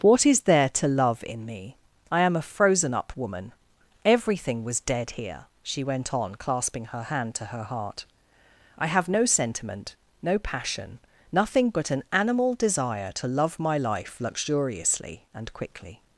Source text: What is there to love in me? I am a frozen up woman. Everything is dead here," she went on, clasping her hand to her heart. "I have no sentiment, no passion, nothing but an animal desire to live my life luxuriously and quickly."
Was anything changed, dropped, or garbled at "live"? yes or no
yes